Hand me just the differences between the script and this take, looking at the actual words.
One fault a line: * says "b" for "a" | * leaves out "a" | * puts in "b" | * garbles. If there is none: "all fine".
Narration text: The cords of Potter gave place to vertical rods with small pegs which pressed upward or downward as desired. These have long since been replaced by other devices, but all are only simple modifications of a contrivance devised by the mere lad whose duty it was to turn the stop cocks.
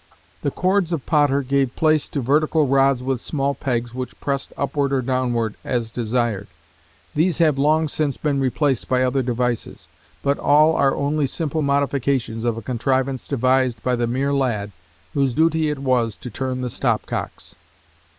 all fine